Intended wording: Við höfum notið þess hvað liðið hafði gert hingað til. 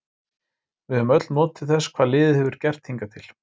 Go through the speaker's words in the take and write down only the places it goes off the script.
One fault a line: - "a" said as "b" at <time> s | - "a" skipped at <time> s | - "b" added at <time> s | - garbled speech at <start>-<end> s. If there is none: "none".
- "öll" added at 1.2 s
- "hafði" said as "hefur" at 2.4 s